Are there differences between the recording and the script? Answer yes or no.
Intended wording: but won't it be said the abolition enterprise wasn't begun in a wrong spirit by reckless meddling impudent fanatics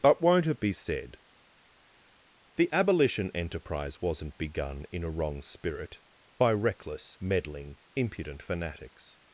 no